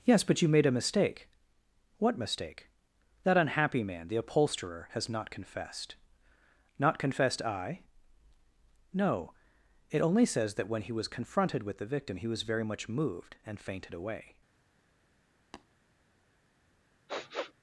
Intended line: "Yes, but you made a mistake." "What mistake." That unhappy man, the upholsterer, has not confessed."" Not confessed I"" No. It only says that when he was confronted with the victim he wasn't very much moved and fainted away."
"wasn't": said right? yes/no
no